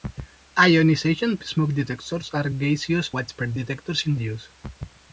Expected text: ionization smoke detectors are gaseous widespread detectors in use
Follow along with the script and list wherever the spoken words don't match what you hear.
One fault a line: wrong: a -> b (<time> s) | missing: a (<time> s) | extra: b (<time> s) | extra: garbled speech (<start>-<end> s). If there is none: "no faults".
no faults